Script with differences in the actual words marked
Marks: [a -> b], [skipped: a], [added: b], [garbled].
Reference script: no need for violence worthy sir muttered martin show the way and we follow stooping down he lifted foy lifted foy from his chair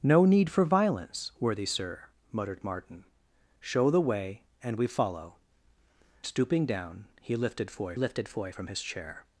no need for violence worthy sir muttered martin show the way and we follow stooping down he lifted foy lifted foy from his chair